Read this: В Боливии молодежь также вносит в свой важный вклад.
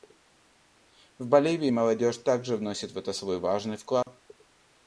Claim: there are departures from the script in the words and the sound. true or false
true